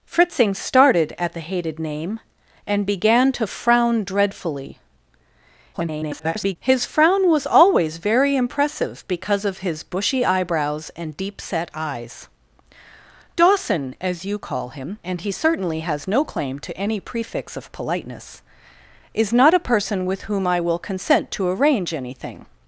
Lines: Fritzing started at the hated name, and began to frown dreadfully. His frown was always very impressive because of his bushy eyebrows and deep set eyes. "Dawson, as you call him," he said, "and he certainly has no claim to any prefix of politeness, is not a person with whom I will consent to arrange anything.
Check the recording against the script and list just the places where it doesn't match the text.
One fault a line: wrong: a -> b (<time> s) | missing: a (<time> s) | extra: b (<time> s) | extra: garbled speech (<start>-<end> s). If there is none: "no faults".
extra: garbled speech (5.7-6.6 s)
missing: he said (15.0 s)